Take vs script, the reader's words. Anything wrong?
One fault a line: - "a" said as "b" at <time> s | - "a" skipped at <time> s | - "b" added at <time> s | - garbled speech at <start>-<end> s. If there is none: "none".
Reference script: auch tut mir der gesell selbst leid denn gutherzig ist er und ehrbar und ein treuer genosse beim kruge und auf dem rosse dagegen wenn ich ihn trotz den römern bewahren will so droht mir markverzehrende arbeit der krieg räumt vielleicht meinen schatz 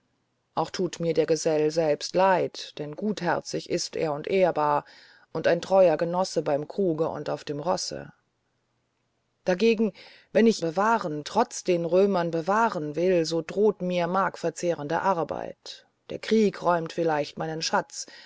- "ihn" said as "bewahren" at 10.6 s